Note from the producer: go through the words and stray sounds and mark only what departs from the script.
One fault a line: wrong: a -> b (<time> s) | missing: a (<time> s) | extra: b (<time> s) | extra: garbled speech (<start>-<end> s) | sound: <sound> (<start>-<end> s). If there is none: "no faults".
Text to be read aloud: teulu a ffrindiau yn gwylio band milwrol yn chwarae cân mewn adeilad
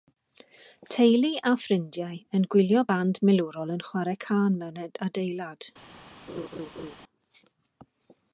sound: laugh (6.3-7.0 s)